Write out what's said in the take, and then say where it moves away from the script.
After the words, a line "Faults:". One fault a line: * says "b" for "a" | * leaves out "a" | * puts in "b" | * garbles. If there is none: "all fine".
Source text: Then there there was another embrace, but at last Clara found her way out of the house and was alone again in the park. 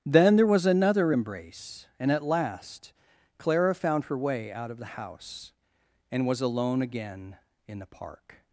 Then there was another embrace, and at last Clara found her way out of the house and was alone again in the park.
Faults:
* leaves out "there"
* says "and" for "but"